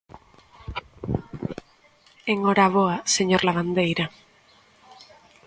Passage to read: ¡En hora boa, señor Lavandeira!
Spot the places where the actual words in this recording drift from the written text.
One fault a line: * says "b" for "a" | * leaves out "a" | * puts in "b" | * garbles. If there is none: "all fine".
all fine